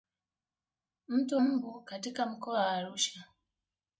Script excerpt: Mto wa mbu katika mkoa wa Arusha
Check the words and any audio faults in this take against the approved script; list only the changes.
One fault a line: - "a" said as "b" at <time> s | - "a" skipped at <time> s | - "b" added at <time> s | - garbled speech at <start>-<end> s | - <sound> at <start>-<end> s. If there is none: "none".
- "wa" skipped at 1.4 s